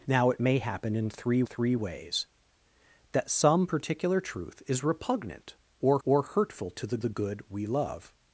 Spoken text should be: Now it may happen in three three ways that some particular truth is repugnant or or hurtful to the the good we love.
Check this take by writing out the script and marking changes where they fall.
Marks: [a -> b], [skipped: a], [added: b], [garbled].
Now it may happen in three three ways that some particular truth is repugnant or or hurtful to the the good we love.